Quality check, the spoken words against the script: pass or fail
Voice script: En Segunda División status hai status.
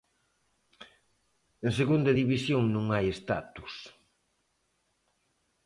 fail